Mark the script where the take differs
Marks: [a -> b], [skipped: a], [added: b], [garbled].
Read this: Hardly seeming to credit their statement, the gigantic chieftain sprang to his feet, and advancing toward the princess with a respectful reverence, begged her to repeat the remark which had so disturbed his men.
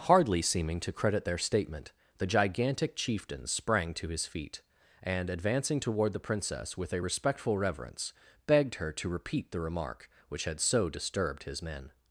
Hardly seeming to credit their statement, the gigantic chieftain sprang to his feet, and advancing toward the princess with a respectful reverence, begged her to repeat the remark which had so disturbed his men.